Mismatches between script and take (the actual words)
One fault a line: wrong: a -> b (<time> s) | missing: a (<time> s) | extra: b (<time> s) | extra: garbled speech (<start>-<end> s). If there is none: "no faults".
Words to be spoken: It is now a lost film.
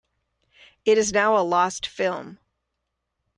no faults